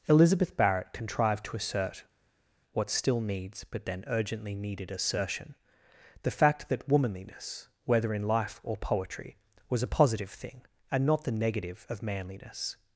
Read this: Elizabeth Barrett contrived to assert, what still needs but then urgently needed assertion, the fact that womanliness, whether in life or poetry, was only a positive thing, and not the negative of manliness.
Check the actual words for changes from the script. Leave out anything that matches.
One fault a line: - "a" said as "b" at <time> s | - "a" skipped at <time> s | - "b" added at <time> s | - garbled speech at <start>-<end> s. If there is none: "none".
- "only" skipped at 9.8 s